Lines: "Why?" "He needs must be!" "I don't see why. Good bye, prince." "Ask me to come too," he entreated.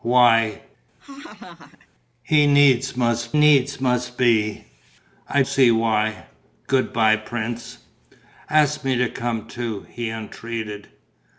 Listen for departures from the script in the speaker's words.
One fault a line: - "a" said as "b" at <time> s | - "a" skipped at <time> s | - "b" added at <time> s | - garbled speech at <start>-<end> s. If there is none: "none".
- "needs must" added at 3.3 s
- "don't" skipped at 5.4 s